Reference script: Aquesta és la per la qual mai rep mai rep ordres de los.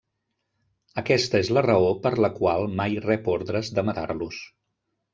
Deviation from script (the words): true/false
true